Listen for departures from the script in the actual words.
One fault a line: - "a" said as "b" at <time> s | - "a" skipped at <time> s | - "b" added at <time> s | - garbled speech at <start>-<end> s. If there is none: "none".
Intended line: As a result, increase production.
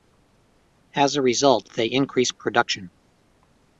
- "they" added at 1.8 s